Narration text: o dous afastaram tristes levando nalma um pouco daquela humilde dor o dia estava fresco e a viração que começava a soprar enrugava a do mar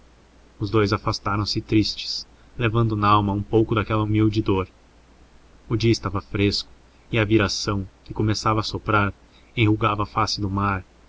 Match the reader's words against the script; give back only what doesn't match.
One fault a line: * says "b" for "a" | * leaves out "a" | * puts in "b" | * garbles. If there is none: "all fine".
* says "os" for "o"
* puts in "se"
* puts in "face"